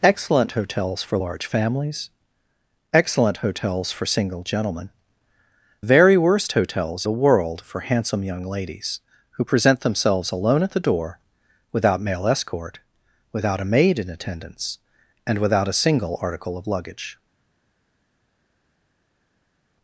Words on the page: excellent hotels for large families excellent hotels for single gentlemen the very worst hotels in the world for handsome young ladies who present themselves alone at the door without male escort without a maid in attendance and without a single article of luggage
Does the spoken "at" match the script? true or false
true